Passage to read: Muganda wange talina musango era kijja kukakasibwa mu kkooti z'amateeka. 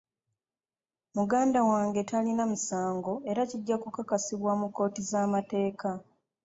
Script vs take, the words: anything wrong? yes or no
no